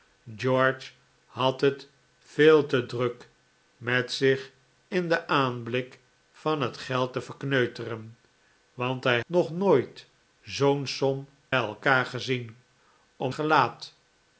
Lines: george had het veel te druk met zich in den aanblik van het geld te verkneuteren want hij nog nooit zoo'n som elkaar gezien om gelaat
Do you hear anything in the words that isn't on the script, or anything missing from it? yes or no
no